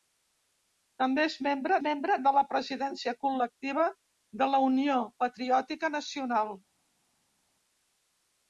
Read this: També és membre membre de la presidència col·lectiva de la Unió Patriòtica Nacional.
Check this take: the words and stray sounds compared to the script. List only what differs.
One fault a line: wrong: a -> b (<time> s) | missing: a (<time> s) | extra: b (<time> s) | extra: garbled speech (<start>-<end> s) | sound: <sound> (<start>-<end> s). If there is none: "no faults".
no faults